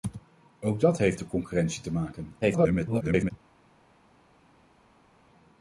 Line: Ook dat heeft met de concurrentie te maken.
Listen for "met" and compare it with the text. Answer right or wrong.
wrong